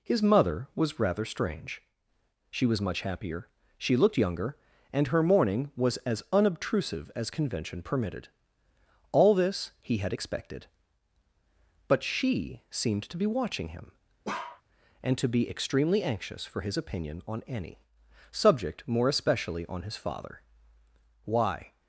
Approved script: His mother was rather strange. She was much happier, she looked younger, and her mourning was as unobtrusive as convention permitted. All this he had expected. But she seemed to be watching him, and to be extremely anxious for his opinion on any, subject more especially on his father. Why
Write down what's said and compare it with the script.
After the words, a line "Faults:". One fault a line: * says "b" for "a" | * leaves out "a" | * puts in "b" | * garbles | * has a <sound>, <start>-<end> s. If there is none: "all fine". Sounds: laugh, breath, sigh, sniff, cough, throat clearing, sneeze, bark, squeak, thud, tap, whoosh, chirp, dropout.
His mother was rather strange. She was much happier, she looked younger, and her mourning was as unobtrusive as convention permitted. All this he had expected. But she seemed to be watching him, and to be extremely anxious for his opinion on any, subject more especially on his father. Why
Faults:
* has a bark, 14.2-14.6 s